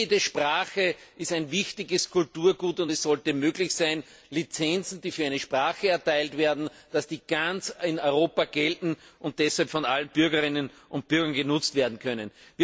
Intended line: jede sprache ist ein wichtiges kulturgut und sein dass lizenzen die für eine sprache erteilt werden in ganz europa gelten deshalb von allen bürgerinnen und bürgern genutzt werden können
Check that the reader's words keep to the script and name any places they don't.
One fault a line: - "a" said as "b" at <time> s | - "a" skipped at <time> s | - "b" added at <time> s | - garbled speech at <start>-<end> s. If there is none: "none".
- "es sollte möglich" added at 2.9 s
- "und" added at 9.2 s